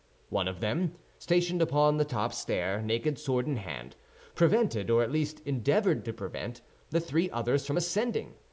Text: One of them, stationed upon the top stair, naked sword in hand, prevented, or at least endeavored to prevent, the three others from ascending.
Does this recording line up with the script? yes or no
yes